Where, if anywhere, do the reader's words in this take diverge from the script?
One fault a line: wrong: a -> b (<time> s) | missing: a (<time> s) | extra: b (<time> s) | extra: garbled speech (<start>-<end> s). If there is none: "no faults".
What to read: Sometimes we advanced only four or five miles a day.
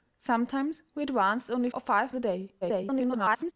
missing: four (1.7 s)
missing: miles (2.1 s)
extra: garbled speech (2.6-3.5 s)